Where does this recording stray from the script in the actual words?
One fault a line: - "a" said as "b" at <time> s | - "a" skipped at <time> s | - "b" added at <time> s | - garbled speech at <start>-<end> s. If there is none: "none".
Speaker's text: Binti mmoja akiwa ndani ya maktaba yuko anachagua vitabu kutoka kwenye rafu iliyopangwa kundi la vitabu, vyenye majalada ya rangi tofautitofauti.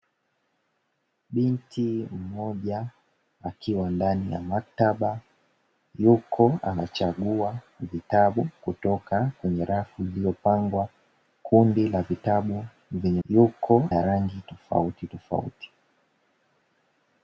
- "majalada" said as "yuko" at 13.3 s